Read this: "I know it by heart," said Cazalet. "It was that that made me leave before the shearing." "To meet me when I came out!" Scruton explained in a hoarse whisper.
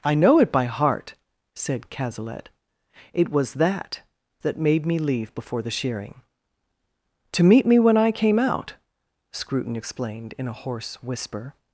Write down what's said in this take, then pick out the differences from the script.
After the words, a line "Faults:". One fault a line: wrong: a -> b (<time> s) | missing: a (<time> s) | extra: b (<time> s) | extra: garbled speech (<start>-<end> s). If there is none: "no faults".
"I know it by heart," said Cazalet. "It was that that made me leave before the shearing." "To meet me when I came out!" Scruton explained in a hoarse whisper.
Faults:
no faults